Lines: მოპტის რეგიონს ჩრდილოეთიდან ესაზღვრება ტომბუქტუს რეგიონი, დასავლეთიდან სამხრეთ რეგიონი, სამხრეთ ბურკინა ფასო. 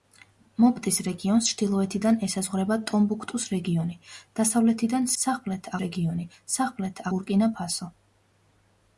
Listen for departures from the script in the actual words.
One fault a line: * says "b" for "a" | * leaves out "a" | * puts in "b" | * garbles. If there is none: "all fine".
all fine